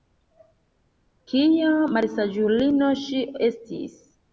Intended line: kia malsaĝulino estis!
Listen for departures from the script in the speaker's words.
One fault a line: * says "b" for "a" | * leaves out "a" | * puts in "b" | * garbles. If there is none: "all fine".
* puts in "ŝi"